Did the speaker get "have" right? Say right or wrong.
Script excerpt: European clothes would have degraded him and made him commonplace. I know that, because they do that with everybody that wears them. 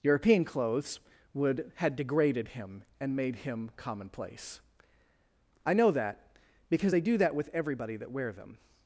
wrong